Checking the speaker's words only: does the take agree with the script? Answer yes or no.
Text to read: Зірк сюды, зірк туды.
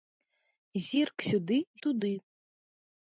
no